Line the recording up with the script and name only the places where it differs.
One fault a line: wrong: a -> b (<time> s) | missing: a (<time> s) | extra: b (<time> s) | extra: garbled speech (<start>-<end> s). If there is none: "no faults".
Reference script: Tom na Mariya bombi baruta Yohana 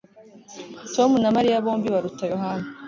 no faults